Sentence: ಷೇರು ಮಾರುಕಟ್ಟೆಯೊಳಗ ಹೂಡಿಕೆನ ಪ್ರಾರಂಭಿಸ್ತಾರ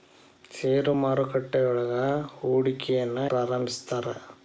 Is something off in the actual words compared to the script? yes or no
no